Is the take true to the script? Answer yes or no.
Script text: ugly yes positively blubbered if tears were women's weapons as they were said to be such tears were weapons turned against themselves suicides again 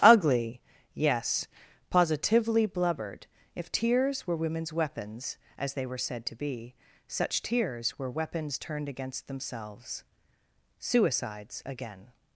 yes